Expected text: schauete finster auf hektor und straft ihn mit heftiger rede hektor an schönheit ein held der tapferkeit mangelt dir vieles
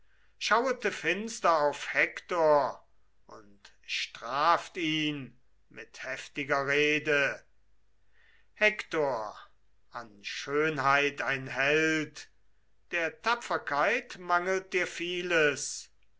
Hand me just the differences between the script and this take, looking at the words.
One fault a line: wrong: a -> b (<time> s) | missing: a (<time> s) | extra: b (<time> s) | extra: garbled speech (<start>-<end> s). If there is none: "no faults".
no faults